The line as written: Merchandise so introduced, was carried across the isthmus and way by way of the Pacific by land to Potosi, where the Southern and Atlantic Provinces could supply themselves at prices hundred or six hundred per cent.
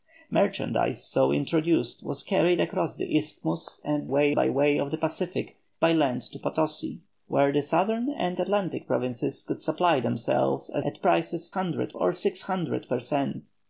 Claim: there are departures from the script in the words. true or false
false